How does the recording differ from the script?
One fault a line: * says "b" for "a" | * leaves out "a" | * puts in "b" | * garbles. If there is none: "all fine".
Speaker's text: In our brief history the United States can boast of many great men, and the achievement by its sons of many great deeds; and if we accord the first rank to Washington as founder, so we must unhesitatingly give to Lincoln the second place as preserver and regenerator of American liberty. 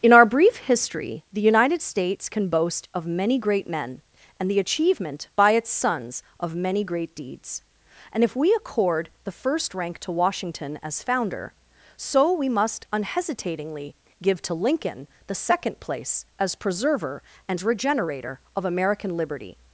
all fine